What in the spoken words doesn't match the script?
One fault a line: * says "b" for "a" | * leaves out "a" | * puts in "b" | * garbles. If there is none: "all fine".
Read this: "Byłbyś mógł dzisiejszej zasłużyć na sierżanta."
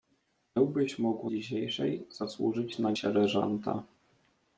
all fine